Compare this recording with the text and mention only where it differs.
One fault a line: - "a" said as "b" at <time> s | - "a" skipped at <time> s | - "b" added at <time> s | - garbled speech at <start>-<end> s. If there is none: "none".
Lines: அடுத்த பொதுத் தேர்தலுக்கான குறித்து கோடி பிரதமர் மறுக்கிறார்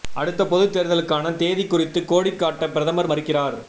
- "தேதி" added at 1.4 s
- "காட்ட" added at 2.4 s